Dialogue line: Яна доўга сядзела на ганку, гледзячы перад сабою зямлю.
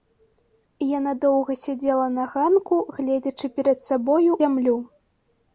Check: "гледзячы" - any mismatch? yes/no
no